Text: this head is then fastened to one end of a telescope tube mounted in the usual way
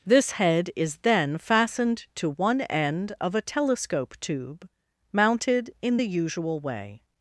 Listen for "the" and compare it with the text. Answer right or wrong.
right